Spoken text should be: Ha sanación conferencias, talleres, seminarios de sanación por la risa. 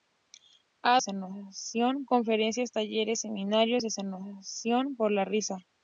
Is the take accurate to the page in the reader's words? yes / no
yes